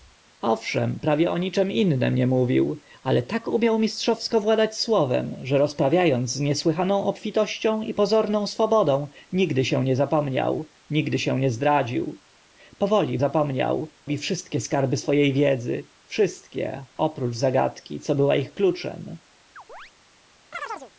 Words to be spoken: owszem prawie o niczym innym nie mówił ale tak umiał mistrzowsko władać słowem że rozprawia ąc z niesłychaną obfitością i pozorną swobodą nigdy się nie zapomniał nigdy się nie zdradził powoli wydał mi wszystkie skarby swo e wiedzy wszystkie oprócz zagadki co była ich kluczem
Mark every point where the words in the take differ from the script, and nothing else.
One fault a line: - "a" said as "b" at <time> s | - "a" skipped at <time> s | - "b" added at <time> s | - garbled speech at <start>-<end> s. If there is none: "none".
- "wydał" said as "zapomniał" at 13.2 s